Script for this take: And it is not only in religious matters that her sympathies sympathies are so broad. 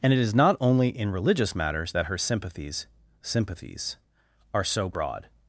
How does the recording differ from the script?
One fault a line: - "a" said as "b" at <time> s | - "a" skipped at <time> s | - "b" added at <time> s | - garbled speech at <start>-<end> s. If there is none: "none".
none